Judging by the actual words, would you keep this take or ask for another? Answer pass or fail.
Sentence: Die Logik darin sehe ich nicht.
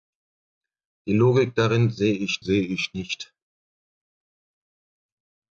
fail